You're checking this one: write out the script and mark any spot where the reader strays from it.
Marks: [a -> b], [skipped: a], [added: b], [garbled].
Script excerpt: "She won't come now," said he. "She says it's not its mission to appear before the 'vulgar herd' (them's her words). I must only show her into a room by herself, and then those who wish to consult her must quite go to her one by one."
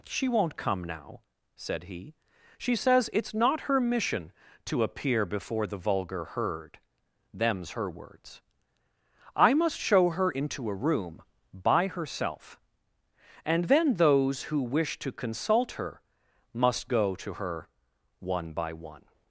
"She won't come now," said he. "She says it's not [its -> her] mission to appear before the 'vulgar herd' (them's her words). I must [skipped: only] show her into a room by herself, and then those who wish to consult her must [skipped: quite] go to her one by one."